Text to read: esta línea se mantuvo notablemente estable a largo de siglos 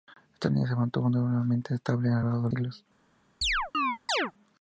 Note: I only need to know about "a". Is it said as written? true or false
true